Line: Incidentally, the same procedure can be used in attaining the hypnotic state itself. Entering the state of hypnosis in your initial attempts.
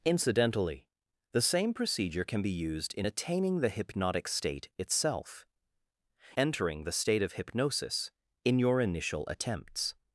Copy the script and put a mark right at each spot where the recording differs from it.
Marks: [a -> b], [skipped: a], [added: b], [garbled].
Incidentally, the same procedure can be used in attaining the hypnotic state itself. Entering the state of hypnosis in your initial attempts.